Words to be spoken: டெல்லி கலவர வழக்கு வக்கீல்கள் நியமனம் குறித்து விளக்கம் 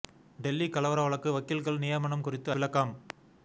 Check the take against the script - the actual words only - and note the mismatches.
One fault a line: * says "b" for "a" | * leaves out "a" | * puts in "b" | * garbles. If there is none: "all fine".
all fine